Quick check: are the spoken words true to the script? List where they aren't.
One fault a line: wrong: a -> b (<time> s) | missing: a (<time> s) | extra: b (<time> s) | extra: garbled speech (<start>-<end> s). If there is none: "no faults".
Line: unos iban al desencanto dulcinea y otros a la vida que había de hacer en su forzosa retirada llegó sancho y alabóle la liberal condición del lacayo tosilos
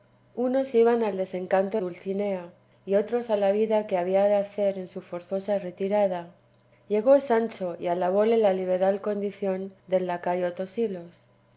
no faults